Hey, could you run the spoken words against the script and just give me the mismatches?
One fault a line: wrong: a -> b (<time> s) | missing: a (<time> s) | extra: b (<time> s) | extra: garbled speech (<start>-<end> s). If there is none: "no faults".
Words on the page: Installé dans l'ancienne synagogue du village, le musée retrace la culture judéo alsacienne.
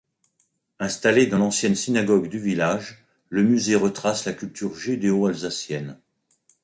no faults